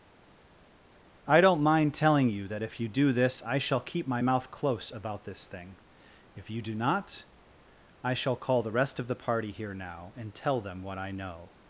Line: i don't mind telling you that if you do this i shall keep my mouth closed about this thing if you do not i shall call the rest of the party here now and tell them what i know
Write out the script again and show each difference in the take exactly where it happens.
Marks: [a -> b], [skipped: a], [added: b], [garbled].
i don't mind telling you that if you do this i shall keep my mouth [closed -> close] about this thing if you do not i shall call the rest of the party here now and tell them what i know